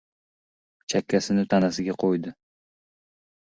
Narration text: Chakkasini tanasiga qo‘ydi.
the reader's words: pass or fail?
pass